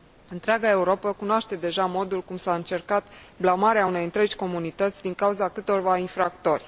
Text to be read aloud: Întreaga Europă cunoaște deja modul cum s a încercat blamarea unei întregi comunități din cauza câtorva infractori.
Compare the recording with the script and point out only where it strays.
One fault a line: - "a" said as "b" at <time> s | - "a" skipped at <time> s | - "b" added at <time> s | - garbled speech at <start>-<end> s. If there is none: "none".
none